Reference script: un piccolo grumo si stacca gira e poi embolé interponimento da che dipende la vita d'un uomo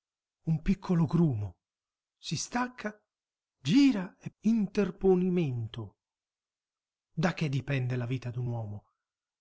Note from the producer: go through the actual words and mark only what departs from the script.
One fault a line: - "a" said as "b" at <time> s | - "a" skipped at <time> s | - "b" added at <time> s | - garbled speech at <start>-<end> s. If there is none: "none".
- "poi embolé" skipped at 4.3 s